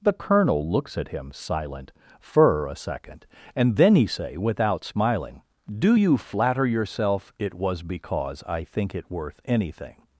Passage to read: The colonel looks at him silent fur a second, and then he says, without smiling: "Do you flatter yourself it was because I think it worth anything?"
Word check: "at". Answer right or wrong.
right